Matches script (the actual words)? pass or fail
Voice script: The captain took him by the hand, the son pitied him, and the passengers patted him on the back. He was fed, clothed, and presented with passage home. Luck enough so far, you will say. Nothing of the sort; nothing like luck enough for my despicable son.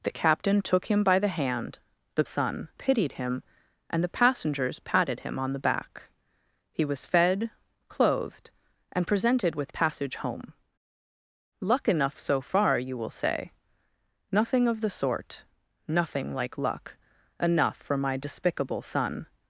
pass